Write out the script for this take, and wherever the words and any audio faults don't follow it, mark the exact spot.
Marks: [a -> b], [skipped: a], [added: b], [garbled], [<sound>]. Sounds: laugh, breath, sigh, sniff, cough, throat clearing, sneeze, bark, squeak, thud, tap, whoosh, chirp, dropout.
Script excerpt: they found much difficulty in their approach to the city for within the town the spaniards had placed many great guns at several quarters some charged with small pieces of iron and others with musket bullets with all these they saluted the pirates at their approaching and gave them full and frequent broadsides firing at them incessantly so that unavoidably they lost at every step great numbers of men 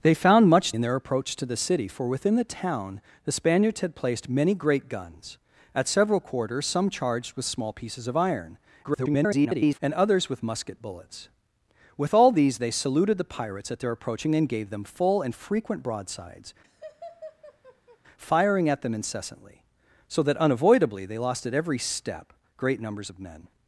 they found much [skipped: difficulty] in their approach to the city for within the town the spaniards had placed many great guns at several quarters some charged with small pieces of iron [garbled] and others with musket bullets with all these they saluted the pirates at their approaching and gave them full and frequent broadsides [laugh] firing at them incessantly so that unavoidably they lost at every step great numbers of men